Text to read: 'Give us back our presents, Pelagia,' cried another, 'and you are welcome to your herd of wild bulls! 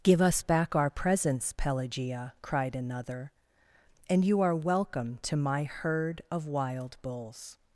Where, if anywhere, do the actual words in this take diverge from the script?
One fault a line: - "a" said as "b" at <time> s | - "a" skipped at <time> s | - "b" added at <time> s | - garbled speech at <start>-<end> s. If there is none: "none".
- "your" said as "my" at 5.3 s